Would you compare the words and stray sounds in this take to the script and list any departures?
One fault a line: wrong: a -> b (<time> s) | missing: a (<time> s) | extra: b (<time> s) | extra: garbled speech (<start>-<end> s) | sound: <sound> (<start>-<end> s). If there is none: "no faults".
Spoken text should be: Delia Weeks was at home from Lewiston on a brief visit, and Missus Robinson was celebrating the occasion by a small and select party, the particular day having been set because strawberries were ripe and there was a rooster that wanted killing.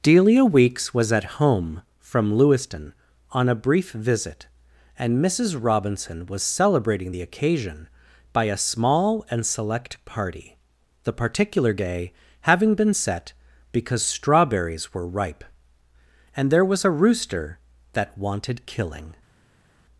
no faults